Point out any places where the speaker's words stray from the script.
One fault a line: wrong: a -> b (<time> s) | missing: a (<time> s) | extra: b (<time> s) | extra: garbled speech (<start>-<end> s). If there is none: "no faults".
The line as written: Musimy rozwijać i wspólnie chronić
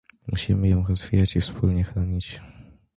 extra: ją (0.7 s)